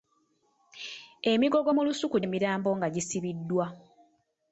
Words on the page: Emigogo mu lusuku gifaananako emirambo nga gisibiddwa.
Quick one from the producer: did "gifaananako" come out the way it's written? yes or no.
no